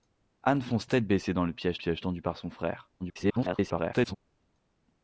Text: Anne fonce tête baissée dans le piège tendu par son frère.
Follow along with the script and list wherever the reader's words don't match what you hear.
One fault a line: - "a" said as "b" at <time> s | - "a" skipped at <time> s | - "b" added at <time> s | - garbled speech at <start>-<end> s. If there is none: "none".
- "piège" added at 1.7 s
- garbled speech at 3.0-4.2 s